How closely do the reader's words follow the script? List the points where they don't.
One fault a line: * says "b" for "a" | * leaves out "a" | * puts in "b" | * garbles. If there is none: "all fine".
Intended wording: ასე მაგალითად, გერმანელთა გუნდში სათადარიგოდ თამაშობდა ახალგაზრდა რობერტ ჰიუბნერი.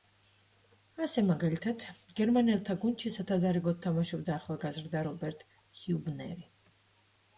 all fine